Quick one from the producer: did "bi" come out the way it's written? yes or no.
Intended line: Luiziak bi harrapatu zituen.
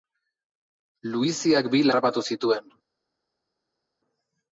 yes